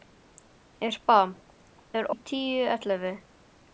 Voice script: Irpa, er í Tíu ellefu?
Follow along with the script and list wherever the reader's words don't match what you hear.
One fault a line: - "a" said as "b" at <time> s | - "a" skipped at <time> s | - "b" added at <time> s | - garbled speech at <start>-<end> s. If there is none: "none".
none